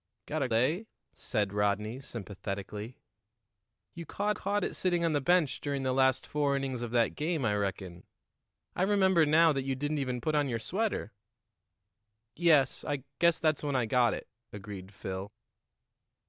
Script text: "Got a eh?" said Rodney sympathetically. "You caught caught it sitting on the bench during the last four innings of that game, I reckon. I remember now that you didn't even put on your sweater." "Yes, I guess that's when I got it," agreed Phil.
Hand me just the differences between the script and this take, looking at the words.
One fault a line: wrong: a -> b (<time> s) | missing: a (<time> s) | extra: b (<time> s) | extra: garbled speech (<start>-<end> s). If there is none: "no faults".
no faults